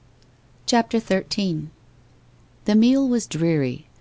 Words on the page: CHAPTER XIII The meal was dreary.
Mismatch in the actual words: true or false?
false